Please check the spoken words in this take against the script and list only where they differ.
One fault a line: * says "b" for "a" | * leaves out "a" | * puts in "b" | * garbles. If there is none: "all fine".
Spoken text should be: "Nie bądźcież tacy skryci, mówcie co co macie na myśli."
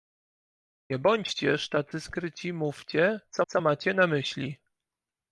all fine